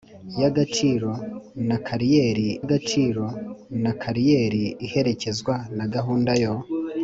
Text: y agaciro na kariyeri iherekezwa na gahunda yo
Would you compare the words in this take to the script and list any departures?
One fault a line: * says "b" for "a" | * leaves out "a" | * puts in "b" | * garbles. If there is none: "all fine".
* puts in "agaciro na kariyeri"